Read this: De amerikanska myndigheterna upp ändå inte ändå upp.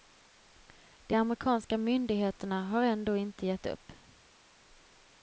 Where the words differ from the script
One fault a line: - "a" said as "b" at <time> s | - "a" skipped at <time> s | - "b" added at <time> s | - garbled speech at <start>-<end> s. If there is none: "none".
- "upp" said as "har" at 2.7 s
- "ändå" said as "gett" at 3.4 s